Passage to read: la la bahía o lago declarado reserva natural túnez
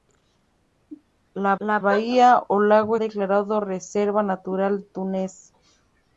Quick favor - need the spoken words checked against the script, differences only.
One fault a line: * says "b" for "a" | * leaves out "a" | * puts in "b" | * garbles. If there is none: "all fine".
all fine